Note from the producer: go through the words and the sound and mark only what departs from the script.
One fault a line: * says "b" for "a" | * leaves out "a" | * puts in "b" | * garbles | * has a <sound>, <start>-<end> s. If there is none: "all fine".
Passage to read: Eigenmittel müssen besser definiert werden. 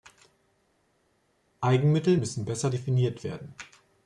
all fine